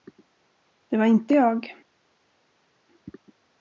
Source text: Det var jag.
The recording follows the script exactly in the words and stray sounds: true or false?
false